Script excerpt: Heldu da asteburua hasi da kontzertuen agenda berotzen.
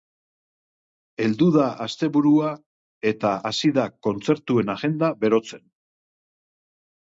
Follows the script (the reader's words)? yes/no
no